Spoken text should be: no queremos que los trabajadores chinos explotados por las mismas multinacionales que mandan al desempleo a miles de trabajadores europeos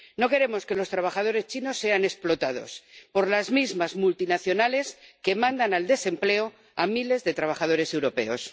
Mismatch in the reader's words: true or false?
true